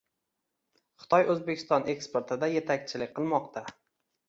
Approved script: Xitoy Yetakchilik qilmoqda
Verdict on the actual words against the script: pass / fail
fail